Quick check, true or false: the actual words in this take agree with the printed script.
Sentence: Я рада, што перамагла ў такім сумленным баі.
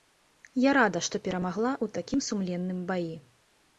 true